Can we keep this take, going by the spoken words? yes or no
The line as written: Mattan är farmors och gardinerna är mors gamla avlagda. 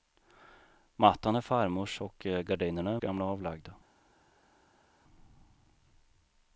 no